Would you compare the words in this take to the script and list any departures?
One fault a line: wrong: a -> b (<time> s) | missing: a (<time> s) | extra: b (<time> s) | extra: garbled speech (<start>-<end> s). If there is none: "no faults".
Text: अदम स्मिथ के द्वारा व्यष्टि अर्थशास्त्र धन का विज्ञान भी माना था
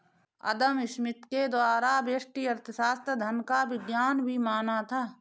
no faults